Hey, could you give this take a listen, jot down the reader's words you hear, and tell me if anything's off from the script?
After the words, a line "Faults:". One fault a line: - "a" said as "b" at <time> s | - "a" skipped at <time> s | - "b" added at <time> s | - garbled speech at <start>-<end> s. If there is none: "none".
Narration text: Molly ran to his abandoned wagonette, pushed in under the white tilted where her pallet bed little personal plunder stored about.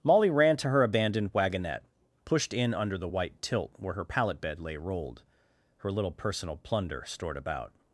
Molly ran to her abandoned wagonette, pushed in under the white tilt where her pallet bed lay rolled, her little personal plunder stored about.
Faults:
- "his" said as "her" at 0.7 s
- "tilted" said as "tilt" at 3.4 s
- "lay rolled her" added at 4.6 s